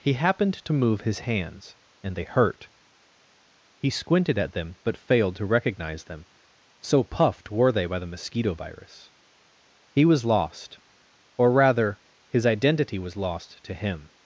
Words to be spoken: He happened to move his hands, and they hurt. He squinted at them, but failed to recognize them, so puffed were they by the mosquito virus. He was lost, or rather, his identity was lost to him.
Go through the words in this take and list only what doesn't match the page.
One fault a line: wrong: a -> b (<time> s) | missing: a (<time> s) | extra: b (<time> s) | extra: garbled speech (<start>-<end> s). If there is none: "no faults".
no faults